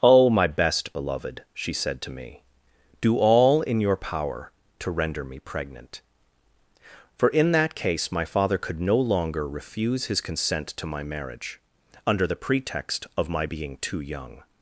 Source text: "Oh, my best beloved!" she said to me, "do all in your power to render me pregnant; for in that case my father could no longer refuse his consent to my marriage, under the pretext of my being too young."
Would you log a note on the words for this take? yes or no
no